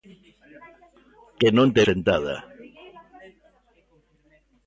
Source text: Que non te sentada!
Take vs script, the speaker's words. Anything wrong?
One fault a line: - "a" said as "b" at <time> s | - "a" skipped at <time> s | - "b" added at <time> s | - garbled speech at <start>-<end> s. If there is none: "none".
none